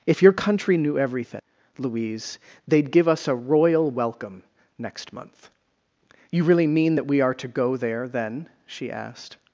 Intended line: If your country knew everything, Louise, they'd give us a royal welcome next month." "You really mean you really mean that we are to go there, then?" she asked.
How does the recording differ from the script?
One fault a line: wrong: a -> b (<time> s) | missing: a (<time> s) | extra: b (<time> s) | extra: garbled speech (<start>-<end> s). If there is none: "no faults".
missing: you really mean (7.0 s)